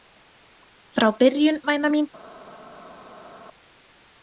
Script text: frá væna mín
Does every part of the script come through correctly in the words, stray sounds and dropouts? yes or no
no